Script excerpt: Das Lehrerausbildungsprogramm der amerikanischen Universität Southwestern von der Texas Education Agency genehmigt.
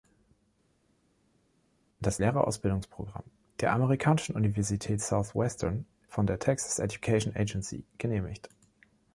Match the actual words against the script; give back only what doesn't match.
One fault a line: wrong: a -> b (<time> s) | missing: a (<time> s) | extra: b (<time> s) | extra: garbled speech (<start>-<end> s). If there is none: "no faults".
no faults